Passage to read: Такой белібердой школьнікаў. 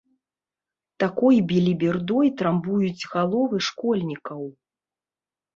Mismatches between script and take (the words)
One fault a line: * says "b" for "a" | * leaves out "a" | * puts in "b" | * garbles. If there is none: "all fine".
* puts in "трамбуюць галовы"